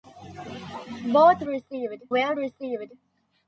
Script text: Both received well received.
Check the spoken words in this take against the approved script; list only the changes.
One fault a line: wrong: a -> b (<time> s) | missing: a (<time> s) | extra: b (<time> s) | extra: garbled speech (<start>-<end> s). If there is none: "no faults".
no faults